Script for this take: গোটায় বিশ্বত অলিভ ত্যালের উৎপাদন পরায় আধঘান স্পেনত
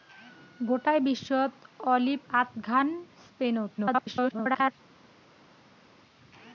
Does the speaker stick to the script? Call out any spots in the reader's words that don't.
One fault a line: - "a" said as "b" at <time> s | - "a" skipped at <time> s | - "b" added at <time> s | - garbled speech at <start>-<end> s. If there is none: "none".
- "ত্যালের উৎপাদন পরায়" skipped at 2.2 s
- garbled speech at 3.8-4.7 s